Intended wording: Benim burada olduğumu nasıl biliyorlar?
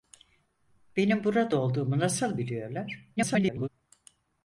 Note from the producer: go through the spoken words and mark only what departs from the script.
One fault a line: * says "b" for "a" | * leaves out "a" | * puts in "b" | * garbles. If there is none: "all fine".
* garbles